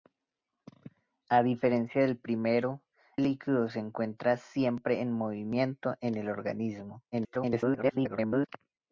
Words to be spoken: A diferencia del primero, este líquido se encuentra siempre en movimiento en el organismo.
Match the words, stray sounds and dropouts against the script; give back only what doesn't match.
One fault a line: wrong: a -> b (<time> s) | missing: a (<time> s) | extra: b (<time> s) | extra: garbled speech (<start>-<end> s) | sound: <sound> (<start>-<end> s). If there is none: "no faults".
missing: este (2.9 s)
extra: garbled speech (7.1-8.5 s)